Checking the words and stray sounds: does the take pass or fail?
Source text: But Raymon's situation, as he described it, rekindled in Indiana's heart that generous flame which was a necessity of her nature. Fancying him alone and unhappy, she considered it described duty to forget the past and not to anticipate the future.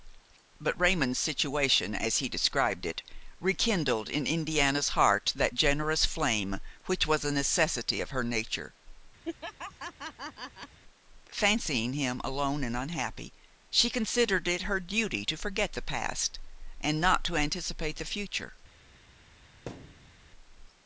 fail